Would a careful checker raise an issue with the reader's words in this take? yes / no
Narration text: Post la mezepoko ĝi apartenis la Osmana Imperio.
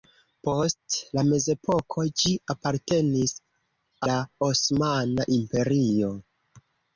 no